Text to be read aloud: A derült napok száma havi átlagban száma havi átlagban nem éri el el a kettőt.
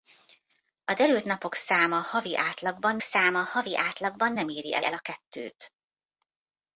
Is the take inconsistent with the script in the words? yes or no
no